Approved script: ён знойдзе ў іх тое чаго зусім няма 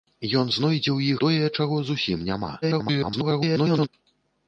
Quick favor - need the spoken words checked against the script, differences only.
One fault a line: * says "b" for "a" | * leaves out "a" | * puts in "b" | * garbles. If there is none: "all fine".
* leaves out "іх"
* garbles